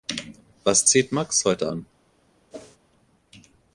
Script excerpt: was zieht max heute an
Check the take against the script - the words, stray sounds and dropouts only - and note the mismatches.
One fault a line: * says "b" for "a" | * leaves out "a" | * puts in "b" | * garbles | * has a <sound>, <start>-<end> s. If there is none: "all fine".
* has a whoosh, 2.5-2.8 s